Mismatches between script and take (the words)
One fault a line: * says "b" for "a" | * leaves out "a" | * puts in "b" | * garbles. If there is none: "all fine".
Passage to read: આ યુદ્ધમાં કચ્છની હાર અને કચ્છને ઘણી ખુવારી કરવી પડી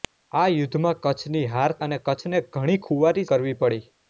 all fine